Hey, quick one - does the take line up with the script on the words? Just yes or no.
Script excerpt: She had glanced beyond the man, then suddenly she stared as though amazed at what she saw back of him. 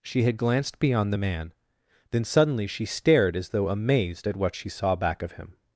yes